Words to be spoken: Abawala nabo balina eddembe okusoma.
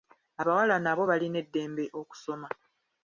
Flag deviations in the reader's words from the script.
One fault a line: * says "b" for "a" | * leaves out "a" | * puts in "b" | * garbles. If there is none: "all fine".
all fine